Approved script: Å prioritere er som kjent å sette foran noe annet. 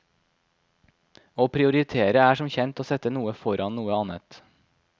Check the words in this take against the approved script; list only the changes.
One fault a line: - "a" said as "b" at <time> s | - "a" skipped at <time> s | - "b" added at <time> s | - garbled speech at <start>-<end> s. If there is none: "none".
- "noe" added at 3.1 s